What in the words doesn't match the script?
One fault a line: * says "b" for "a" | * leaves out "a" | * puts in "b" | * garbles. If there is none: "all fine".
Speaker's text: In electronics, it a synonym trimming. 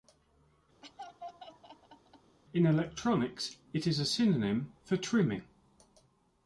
* puts in "is"
* puts in "for"